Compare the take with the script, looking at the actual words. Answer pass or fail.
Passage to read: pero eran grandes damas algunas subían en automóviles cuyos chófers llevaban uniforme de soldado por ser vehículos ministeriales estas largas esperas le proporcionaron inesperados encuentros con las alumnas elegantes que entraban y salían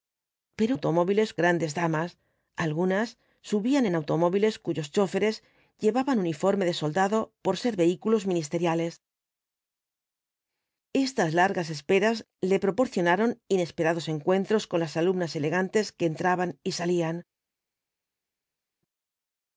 fail